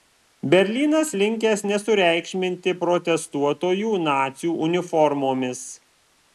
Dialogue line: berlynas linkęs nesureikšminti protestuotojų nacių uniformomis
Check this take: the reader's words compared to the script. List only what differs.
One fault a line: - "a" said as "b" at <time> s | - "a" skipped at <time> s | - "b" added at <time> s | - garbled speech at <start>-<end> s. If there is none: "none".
none